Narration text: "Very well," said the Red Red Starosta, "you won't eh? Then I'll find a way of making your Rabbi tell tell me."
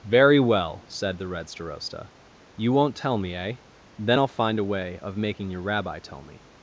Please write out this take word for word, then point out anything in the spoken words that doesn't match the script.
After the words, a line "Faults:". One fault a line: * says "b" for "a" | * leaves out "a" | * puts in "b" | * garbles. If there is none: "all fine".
"Very well," said the Red Starosta, "you won't tell me, eh? Then I'll find a way of making your Rabbi tell me."
Faults:
* leaves out "Red"
* puts in "tell me"
* leaves out "tell"